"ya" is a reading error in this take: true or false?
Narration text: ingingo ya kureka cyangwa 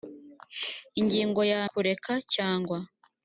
false